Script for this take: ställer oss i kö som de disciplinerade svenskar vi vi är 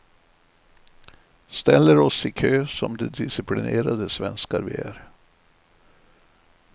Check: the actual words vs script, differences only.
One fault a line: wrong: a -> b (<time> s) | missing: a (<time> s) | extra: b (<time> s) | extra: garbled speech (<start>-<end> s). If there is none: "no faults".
missing: vi (4.7 s)